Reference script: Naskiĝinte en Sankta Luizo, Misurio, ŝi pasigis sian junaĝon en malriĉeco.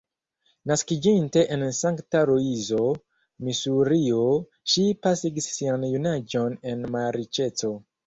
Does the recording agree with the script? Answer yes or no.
yes